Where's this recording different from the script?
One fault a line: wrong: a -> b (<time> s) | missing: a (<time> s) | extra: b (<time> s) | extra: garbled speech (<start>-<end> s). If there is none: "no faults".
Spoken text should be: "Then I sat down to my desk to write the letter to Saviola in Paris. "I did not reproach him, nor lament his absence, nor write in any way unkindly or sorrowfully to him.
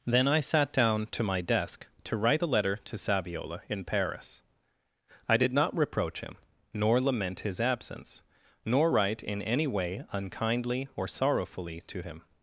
no faults